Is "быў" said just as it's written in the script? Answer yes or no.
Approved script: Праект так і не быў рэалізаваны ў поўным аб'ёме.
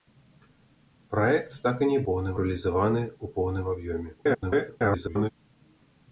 no